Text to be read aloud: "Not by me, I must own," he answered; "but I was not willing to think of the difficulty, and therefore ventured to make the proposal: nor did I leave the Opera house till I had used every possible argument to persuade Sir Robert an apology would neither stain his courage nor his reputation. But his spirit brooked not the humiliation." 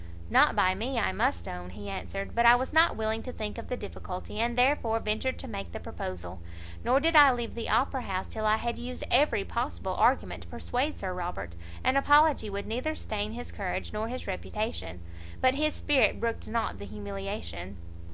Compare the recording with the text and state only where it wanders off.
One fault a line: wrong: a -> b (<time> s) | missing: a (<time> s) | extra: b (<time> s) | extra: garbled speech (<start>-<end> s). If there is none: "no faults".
no faults